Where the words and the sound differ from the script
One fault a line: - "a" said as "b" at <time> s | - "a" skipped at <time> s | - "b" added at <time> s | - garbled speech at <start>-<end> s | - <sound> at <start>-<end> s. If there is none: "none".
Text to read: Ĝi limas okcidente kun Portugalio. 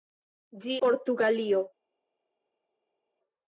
- "limas okcidente kun" skipped at 0.8 s